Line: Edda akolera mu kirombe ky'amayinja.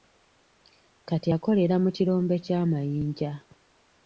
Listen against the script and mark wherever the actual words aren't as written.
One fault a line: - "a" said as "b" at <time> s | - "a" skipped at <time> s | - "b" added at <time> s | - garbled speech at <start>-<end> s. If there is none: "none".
- "Edda" said as "Kati" at 1.1 s